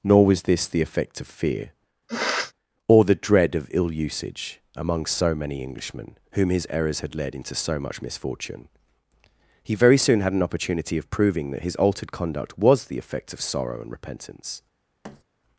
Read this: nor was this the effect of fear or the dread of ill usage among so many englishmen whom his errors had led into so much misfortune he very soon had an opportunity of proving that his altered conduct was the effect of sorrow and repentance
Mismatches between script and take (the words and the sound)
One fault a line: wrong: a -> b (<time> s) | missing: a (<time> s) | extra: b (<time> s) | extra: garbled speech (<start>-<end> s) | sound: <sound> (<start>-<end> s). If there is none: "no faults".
sound: sniff (2.1-2.5 s)
sound: thud (15.0-15.2 s)